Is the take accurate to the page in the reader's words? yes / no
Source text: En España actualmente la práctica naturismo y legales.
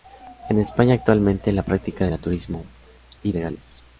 yes